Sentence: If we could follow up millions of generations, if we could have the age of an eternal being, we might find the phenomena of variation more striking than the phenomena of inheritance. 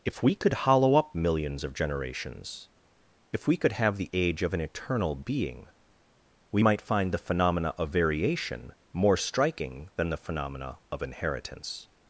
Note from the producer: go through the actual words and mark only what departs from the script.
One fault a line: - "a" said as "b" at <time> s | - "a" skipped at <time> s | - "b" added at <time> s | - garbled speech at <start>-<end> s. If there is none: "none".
- "follow" said as "hollow" at 0.5 s